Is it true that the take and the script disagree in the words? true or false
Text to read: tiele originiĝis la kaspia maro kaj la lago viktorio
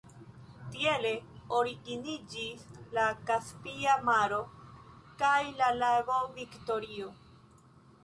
false